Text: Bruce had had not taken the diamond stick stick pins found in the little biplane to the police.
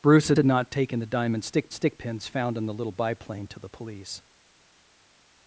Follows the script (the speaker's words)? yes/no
yes